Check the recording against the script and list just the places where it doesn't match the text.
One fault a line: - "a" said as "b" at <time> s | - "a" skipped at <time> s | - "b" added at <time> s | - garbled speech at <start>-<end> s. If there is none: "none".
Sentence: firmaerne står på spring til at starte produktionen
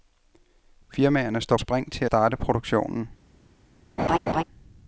- "på" skipped at 1.6 s
- "at" skipped at 2.0 s